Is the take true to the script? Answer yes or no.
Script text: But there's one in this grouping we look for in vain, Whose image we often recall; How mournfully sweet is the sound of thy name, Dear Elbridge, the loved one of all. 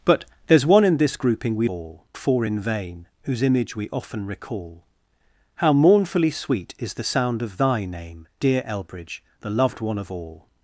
no